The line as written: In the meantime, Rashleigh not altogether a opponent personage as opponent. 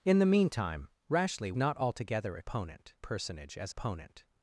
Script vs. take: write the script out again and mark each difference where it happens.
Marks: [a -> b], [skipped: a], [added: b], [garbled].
In the meantime, Rashleigh not altogether a opponent personage as opponent.